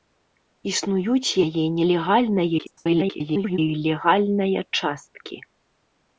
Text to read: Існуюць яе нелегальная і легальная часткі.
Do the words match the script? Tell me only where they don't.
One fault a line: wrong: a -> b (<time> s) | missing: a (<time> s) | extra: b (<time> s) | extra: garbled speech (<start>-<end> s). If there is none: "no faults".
extra: garbled speech (2.6-3.6 s)